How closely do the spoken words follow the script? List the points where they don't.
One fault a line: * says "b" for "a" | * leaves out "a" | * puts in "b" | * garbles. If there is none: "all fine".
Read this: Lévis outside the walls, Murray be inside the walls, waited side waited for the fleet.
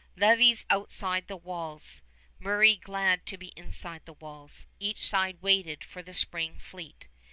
* puts in "glad to"
* says "each" for "waited"
* puts in "spring"